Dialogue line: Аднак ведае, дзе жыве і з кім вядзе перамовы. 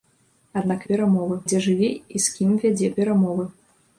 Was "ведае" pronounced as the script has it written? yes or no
no